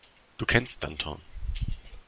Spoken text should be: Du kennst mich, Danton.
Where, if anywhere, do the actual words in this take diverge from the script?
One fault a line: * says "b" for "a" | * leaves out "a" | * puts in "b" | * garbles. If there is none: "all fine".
* leaves out "mich"